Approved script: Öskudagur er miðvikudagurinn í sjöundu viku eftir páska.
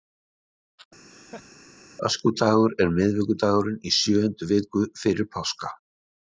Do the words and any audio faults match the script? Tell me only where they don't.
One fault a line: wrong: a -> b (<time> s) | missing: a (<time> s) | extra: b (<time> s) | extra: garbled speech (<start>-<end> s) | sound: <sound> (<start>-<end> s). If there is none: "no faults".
sound: laugh (1.1-1.5 s)
wrong: eftir -> fyrir (5.0 s)